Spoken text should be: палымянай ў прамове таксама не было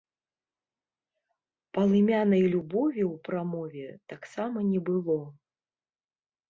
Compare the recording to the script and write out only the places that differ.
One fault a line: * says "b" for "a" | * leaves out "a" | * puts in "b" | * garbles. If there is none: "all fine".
* puts in "любові"